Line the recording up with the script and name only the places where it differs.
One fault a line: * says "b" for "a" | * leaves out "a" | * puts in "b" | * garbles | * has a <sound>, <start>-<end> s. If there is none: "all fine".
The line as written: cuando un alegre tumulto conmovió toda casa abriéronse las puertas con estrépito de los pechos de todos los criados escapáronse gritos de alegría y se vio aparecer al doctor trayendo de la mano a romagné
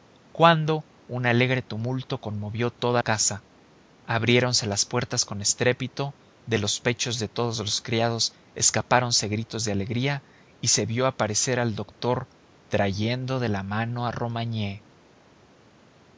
all fine